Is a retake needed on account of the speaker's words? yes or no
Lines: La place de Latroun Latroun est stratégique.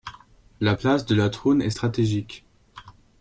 yes